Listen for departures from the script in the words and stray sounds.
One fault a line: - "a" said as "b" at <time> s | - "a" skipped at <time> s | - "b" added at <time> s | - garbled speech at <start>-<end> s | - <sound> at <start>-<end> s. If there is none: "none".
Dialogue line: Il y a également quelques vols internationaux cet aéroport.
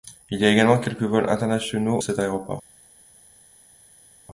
none